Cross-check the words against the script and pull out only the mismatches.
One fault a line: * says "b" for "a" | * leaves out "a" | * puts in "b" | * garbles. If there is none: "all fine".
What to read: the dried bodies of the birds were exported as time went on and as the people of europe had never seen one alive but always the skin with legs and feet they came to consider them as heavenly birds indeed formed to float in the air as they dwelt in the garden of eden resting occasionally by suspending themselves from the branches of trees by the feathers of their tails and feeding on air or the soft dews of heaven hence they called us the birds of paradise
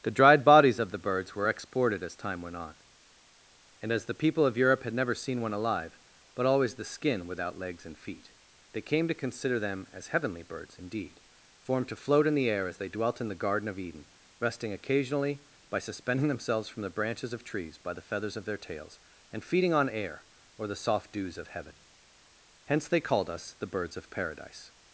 * says "without" for "with"